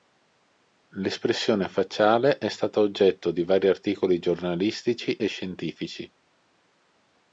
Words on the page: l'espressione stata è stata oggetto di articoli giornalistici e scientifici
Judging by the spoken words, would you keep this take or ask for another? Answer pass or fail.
fail